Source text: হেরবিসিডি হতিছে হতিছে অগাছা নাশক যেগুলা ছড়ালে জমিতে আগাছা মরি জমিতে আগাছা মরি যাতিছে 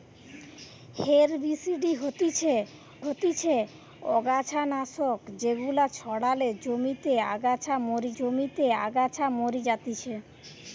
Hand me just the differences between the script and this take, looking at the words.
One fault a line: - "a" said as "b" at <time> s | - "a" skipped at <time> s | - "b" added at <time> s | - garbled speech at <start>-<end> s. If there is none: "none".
none